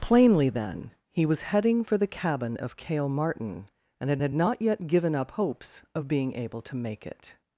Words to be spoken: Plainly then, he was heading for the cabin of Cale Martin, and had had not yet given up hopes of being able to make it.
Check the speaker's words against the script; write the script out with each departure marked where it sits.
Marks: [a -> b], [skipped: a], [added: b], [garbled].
Plainly then, he was heading for the cabin of Cale Martin, and had had not yet given up hopes of being able to make it.